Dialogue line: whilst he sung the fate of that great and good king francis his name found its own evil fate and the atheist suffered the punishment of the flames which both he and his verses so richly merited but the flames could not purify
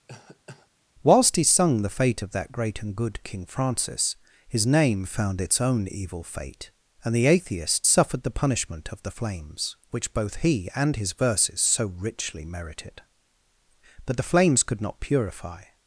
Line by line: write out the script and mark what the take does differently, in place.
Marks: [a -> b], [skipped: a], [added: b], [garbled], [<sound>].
[cough] whilst he sung the fate of that great and good king francis his name found its own evil fate and the atheist suffered the punishment of the flames which both he and his verses so richly merited but the flames could not purify